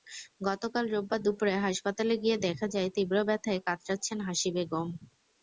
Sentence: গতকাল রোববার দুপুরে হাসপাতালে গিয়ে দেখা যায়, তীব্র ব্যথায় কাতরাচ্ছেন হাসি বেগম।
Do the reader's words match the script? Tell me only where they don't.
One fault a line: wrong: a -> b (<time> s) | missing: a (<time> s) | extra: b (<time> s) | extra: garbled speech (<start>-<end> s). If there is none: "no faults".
no faults